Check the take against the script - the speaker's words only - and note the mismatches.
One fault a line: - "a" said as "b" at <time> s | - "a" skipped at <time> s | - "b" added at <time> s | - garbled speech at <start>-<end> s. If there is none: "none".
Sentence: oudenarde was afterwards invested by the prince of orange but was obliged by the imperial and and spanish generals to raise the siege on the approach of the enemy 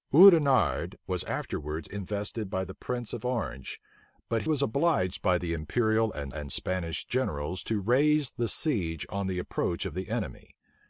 none